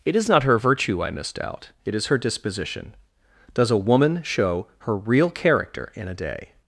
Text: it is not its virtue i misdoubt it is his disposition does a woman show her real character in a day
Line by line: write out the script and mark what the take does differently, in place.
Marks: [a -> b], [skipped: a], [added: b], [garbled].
it is not [its -> her] virtue i misdoubt it is [his -> her] disposition does a woman show her real character in a day